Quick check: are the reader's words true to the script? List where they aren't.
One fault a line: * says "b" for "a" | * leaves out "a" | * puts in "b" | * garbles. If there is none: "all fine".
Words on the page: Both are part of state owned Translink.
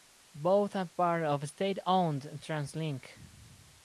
all fine